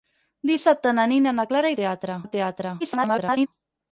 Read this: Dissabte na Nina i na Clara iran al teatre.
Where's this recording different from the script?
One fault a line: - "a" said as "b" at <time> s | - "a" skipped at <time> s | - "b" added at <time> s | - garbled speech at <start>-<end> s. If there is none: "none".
- "iran" said as "teatre" at 1.8 s
- garbled speech at 2.8-3.5 s